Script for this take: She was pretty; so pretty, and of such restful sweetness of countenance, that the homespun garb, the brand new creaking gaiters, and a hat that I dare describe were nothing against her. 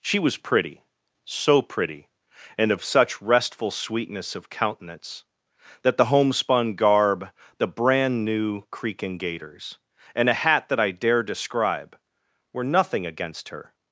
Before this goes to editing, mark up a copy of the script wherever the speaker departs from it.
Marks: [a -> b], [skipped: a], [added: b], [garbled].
She was pretty; so pretty, and of such restful sweetness of countenance, that the homespun garb, the brand new creaking gaiters, and a hat that I dare describe were nothing against her.